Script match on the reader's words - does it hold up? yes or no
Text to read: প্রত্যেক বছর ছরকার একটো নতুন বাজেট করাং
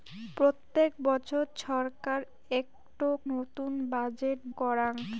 yes